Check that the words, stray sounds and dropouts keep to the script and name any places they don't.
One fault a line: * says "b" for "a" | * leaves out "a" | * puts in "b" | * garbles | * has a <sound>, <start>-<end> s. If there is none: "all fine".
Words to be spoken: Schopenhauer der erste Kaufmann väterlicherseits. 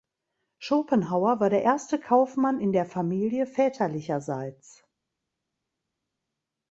* puts in "war"
* puts in "in der Familie"